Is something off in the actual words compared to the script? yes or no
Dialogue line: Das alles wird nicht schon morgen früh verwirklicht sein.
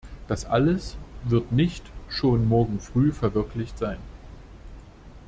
no